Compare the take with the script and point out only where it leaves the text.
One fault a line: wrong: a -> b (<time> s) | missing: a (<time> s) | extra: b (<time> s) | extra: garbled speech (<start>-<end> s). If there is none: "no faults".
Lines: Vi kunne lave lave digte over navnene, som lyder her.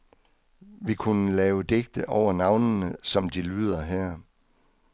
missing: lave (1.6 s)
extra: de (3.3 s)